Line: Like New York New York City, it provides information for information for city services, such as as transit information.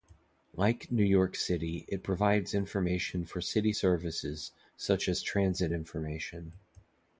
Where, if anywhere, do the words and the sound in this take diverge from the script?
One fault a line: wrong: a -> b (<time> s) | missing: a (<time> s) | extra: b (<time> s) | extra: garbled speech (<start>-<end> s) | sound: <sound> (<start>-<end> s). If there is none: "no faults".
missing: New York (1.4 s)
missing: information for (3.4 s)
missing: as (5.2 s)